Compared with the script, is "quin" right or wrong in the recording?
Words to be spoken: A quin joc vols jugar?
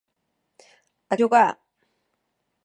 wrong